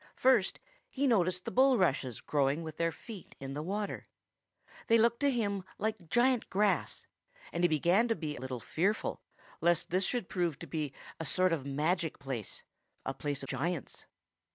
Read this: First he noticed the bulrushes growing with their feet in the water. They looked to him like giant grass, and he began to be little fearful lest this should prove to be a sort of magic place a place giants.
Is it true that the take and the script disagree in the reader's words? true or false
false